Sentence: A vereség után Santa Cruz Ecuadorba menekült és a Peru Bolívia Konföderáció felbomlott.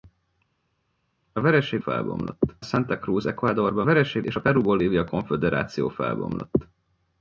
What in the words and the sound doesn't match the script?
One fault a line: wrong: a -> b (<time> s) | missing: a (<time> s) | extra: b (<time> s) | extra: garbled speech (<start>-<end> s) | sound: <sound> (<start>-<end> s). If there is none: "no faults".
wrong: után -> felbomlott (1.8 s)
wrong: menekült -> vereség (3.8 s)